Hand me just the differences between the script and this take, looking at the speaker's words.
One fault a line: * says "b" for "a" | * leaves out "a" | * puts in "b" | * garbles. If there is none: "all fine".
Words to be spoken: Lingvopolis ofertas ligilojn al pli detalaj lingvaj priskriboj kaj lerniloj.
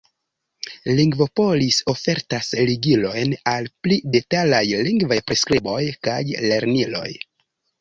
all fine